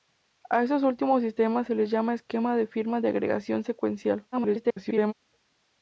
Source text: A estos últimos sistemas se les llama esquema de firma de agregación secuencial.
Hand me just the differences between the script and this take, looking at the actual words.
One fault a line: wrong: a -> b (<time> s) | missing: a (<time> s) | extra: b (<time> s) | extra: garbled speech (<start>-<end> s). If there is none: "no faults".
extra: garbled speech (4.3-5.1 s)